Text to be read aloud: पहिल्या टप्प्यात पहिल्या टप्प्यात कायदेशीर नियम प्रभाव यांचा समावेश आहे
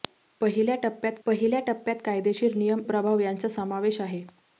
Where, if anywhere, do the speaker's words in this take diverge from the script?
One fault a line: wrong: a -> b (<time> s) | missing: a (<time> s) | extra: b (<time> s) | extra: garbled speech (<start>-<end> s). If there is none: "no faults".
no faults